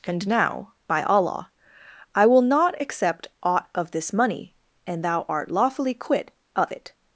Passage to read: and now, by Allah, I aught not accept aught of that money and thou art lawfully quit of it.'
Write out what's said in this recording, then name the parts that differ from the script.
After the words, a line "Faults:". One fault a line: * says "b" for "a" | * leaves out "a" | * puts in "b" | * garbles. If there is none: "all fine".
and now, by Allah, I will not accept aught of this money and thou art lawfully quit of it.'
Faults:
* says "will" for "aught"
* says "this" for "that"